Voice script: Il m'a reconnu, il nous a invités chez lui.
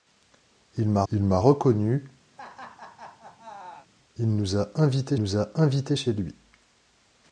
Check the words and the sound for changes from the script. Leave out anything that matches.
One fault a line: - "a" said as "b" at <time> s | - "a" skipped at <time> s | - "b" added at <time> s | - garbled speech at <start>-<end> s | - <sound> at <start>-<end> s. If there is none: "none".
- "il m'a" added at 1.1 s
- laugh at 2.3-3.9 s
- "nous a invités" added at 5.2 s